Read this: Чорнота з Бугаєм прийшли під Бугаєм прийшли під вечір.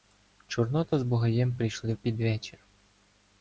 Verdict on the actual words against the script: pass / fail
fail